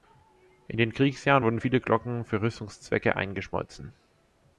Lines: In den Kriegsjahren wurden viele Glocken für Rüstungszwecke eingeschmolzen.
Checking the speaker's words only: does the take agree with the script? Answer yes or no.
yes